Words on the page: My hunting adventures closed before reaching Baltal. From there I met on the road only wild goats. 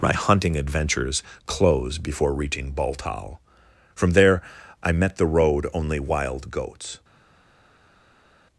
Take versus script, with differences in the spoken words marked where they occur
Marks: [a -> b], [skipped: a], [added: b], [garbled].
My hunting adventures [closed -> close] before reaching Baltal. From there I met [skipped: on] the road only wild goats.